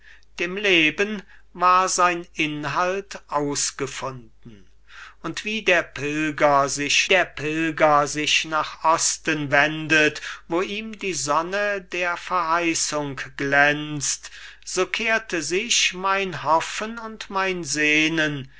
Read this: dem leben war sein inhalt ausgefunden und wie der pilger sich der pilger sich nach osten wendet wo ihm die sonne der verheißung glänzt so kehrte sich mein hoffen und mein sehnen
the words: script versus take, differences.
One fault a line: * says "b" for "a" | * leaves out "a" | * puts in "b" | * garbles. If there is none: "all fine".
all fine